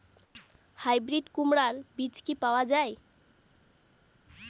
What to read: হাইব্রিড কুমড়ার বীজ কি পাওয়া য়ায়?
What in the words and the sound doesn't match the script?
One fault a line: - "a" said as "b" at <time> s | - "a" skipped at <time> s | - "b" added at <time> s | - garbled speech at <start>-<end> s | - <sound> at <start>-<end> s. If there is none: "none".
none